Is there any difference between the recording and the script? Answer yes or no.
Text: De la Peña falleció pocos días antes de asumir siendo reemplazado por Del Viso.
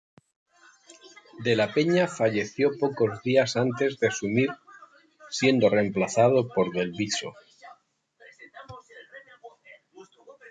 no